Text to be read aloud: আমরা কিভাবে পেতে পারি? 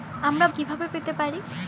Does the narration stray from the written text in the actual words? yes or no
no